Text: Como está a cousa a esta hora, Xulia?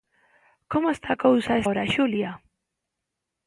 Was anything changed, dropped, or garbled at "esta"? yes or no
yes